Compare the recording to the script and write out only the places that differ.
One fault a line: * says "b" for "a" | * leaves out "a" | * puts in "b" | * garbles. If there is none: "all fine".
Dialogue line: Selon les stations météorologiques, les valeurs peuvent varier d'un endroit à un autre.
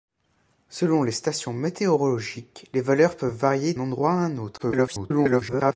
* leaves out "d'un"
* garbles